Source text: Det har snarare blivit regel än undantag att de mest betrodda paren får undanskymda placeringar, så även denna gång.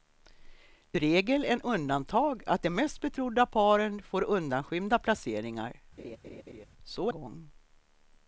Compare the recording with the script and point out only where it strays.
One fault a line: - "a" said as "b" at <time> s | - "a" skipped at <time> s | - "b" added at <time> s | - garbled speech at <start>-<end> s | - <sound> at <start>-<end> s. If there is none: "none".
- "har snarare blivit" skipped at 1.0 s
- laugh at 6.0-6.7 s
- "även denna" skipped at 7.1 s